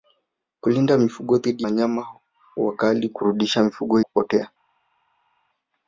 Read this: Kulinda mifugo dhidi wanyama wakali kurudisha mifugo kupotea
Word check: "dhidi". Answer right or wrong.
right